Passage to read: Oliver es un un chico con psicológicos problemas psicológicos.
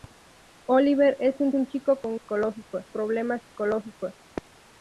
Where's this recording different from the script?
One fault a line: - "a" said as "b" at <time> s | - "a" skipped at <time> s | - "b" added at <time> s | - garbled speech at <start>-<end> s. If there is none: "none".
none